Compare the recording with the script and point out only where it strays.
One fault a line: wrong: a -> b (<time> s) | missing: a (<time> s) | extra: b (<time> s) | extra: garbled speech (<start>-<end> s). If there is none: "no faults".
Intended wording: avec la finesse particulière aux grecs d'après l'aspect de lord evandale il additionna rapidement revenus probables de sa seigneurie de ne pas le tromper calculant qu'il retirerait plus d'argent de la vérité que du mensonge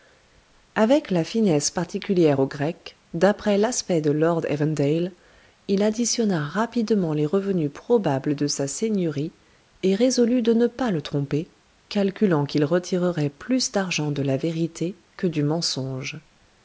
extra: les (7.1 s)
extra: et résolut (9.8 s)